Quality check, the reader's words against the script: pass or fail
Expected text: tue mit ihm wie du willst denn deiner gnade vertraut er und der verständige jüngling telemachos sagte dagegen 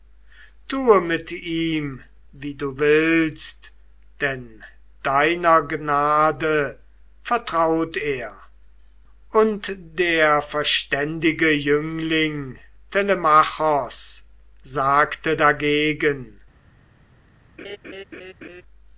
pass